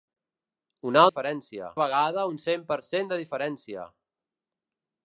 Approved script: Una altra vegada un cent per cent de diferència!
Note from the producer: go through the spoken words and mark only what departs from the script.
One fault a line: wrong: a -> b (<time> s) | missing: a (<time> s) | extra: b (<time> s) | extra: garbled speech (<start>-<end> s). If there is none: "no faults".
wrong: altra -> diferència (1.1 s)